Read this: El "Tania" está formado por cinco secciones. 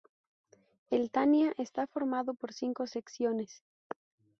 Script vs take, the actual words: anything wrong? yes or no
no